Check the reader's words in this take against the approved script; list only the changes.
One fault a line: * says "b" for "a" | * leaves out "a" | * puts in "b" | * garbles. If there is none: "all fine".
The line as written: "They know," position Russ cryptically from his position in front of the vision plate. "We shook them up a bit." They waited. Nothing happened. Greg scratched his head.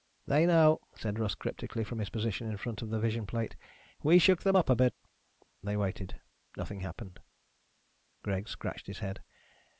* says "said" for "position"